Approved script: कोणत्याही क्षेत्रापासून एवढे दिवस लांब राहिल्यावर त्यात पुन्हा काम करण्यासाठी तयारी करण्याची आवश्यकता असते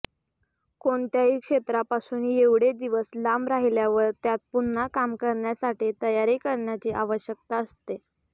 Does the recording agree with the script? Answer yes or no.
yes